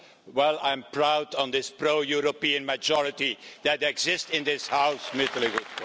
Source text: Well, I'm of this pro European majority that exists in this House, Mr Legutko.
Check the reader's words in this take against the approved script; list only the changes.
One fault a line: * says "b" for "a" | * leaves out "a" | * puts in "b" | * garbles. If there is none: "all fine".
* puts in "proud"